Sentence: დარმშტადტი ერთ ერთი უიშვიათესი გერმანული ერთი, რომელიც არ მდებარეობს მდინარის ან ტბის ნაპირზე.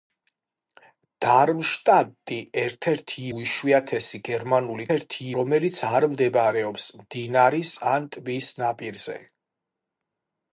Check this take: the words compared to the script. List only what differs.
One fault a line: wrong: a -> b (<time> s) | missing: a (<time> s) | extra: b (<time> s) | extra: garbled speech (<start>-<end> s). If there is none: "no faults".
no faults